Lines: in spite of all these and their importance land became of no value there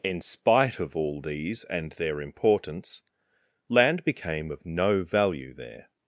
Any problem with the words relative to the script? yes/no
no